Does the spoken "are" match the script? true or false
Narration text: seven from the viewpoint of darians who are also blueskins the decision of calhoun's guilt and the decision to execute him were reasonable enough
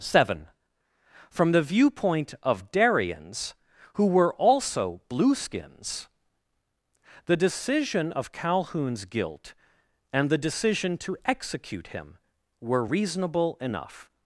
false